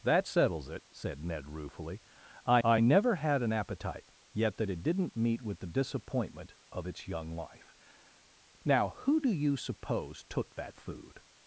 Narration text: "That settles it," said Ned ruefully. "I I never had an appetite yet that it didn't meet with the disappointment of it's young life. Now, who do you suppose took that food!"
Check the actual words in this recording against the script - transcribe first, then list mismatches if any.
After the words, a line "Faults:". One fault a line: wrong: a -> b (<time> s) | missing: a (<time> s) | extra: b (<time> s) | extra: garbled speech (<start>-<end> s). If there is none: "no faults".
"That settles it," said Ned ruefully. "I I never had an appetite yet that it didn't meet with the disappointment of it's young life. Now, who do you suppose took that food!"
Faults:
no faults